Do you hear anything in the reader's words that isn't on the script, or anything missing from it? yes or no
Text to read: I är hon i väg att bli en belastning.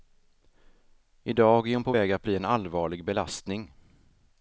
yes